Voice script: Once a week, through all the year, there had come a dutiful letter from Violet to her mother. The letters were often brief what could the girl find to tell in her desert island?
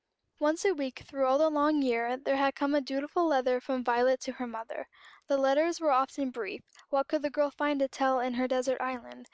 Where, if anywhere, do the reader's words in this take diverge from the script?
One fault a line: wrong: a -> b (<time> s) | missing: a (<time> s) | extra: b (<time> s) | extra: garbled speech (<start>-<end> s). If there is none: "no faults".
extra: long (1.5 s)